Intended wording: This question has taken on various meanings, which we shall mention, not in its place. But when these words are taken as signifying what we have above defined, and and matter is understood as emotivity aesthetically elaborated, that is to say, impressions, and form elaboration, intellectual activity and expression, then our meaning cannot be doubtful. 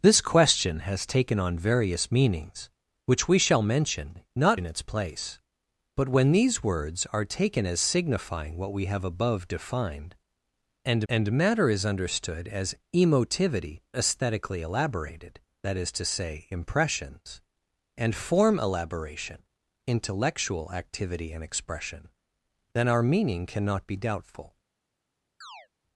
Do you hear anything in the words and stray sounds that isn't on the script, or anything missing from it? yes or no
yes